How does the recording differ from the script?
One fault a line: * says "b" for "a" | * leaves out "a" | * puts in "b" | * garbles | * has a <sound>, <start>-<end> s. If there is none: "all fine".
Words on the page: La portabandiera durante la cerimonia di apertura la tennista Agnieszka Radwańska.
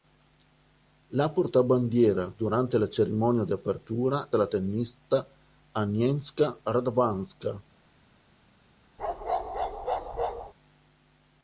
* has a bark, 9.0-10.5 s